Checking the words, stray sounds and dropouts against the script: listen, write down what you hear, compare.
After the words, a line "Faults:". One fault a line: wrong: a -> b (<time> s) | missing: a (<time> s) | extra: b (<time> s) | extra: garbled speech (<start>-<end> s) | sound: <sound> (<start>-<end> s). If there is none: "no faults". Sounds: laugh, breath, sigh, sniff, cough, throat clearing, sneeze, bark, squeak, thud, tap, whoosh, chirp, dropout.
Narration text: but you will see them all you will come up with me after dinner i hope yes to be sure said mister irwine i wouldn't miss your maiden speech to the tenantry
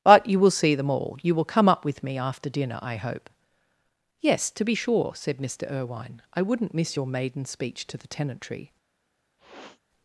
but you will see them all you will come up with me after dinner i hope yes to be sure said mister irwine i wouldn't miss your maiden speech to the tenantry
Faults:
sound: sniff (9.4-9.8 s)